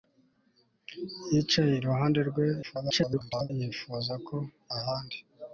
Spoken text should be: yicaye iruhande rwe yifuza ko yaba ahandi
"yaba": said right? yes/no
no